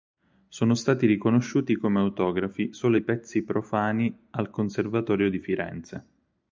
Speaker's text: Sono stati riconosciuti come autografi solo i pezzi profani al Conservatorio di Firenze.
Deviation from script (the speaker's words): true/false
false